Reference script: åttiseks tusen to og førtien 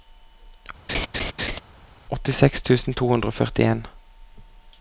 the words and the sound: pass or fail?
fail